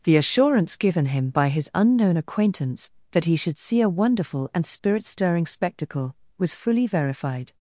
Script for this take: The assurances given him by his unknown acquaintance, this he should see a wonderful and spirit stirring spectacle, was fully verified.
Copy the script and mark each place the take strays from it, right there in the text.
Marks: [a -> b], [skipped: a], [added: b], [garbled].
The [assurances -> assurance] given him by his unknown acquaintance, [this -> that] he should see a wonderful and spirit stirring spectacle, was fully verified.